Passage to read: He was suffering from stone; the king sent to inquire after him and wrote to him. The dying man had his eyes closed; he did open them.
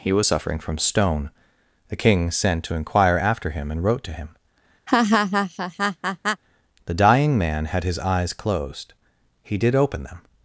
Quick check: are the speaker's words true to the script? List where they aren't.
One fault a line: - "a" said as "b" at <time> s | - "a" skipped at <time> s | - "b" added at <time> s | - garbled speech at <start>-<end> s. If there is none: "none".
none